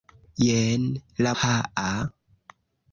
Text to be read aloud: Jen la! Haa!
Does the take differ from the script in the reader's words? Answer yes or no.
no